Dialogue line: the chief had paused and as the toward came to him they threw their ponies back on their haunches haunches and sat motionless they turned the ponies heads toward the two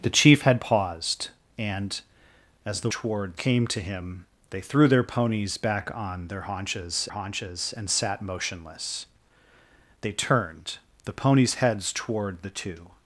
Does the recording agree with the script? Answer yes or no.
yes